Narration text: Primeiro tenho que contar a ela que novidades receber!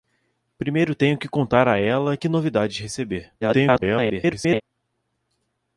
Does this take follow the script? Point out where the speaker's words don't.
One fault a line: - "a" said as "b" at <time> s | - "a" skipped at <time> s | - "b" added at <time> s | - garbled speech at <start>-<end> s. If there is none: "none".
- garbled speech at 3.4-4.6 s